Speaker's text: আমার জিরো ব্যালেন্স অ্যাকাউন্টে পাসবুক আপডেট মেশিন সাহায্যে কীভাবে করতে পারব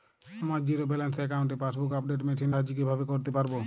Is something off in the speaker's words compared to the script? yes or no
no